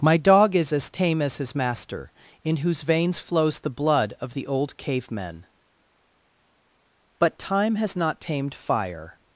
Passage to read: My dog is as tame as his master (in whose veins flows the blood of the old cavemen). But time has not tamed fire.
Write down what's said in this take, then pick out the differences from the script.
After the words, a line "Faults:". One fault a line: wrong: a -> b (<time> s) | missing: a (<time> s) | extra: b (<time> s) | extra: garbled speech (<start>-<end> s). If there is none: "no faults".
My dog is as tame as his master (in whose veins flows the blood of the old cavemen). But time has not tamed fire.
Faults:
no faults